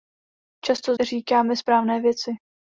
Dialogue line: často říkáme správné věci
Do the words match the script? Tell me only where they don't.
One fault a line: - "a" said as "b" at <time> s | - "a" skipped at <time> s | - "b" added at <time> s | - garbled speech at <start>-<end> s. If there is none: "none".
none